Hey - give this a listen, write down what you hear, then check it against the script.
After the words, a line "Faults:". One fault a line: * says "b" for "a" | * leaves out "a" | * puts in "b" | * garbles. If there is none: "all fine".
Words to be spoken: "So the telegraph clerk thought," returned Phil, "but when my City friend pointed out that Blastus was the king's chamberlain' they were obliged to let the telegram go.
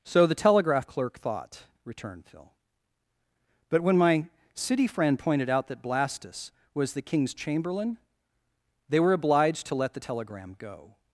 "So the telegraph clerk thought," returned Phil, "but when my City friend pointed out that Blastus was the king's chamberlain' they were obliged to let the telegram go.
Faults:
all fine